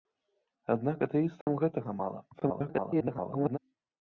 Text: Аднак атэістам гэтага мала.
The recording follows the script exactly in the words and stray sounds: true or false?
false